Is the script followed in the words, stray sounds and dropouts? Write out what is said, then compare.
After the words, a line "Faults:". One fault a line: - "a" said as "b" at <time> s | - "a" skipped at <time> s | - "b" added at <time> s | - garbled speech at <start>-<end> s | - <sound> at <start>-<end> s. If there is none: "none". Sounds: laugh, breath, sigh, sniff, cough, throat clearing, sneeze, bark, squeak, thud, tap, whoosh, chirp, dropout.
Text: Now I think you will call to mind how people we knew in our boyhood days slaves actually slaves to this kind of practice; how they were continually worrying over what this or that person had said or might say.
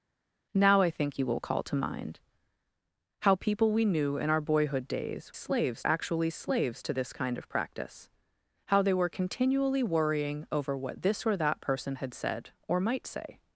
Now I think you will call to mind how people we knew in our boyhood days slaves actually slaves to this kind of practice; how they were continually worrying over what this or that person had said or might say.
Faults:
none